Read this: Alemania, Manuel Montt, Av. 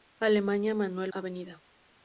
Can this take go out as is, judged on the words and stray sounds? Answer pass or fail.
fail